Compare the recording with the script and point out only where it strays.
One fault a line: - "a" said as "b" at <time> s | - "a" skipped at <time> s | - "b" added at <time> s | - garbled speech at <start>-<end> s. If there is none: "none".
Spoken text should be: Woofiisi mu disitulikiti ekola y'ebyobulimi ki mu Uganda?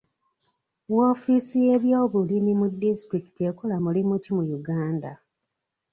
- "y'ebyobulimi" added at 1.6 s
- "y'ebyobulimi" said as "mulimu" at 3.8 s